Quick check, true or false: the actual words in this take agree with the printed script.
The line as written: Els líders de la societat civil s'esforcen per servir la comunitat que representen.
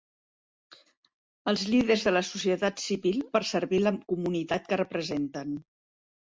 false